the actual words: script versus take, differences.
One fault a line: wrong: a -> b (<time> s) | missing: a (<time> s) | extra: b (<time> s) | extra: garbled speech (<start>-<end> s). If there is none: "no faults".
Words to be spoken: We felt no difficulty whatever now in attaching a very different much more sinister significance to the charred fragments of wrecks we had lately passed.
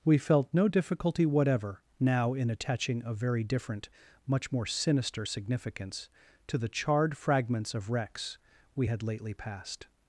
no faults